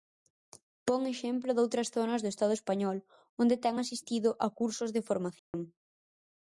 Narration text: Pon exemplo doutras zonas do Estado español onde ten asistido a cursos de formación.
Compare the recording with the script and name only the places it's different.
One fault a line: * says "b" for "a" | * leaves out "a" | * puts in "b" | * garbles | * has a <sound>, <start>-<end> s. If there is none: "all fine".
* has a dropout, 5.4-5.5 s